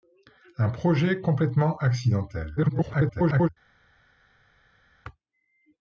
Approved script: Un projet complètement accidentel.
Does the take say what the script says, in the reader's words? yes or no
no